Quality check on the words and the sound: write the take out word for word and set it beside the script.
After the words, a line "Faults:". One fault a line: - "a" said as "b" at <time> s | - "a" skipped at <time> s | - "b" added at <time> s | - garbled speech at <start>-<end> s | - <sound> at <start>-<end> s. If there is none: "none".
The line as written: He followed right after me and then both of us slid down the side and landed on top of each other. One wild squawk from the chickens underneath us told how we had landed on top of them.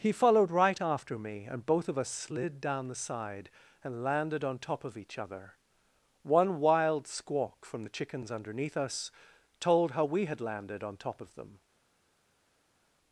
He followed right after me and both of us slid down the side and landed on top of each other. One wild squawk from the chickens underneath us told how we had landed on top of them.
Faults:
- "then" skipped at 1.6 s